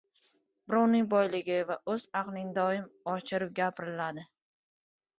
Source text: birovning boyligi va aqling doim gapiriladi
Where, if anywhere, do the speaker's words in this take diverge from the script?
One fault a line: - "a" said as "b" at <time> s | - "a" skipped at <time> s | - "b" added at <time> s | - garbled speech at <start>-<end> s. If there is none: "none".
- "o‘z" added at 1.9 s
- "oshirib" added at 3.2 s